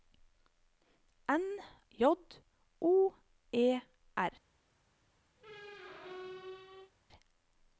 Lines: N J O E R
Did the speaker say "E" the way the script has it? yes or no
yes